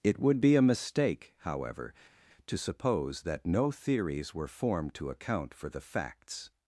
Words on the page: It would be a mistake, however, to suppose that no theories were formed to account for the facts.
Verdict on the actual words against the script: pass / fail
pass